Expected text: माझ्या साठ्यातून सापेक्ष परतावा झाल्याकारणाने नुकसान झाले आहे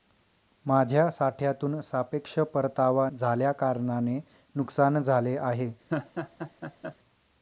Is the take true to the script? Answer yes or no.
yes